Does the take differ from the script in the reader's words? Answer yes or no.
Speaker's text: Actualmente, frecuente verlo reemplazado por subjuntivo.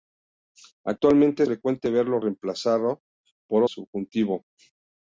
no